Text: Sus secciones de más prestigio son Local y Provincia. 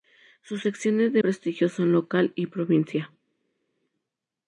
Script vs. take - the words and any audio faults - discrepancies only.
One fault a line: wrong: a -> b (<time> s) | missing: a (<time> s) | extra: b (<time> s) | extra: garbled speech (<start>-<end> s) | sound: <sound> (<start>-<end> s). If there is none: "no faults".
missing: más (1.2 s)